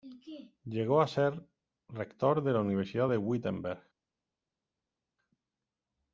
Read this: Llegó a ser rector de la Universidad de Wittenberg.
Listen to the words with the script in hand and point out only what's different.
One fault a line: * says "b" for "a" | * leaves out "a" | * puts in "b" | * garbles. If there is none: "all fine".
all fine